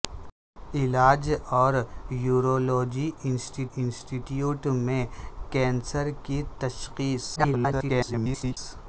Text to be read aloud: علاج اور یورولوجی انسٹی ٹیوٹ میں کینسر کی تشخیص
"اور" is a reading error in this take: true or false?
false